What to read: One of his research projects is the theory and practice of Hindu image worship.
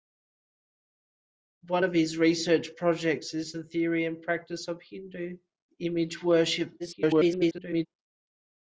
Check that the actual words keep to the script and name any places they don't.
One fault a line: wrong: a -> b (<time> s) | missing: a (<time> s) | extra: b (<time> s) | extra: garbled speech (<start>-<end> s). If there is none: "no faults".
extra: garbled speech (6.8-7.9 s)